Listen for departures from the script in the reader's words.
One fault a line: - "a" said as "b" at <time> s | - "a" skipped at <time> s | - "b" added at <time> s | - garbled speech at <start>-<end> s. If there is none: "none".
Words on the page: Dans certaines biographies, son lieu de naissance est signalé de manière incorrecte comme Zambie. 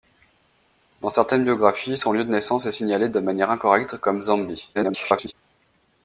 - garbled speech at 4.7-5.3 s